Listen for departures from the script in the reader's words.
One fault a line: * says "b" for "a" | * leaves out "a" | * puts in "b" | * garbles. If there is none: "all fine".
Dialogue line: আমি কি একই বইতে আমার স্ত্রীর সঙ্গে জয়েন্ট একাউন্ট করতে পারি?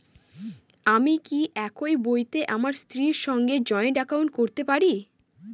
all fine